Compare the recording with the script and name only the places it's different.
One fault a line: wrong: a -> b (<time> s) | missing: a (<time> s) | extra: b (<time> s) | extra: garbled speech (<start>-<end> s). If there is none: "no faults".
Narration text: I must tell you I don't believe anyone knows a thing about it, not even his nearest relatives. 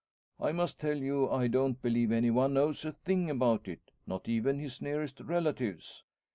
no faults